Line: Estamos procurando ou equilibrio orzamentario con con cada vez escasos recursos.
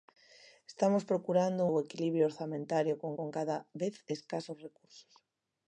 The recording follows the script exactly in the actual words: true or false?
true